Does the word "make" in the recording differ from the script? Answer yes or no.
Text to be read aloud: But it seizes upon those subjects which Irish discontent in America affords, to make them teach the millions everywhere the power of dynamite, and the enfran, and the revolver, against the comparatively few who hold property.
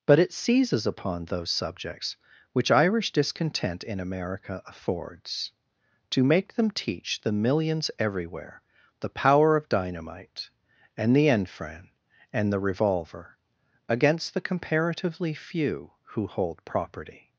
no